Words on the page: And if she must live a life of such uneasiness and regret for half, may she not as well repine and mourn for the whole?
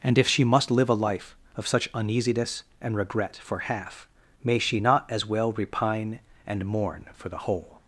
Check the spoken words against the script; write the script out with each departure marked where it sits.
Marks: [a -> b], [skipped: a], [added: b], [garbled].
And if she must live a life of such uneasiness and regret for half, may she not as well repine and mourn for the whole?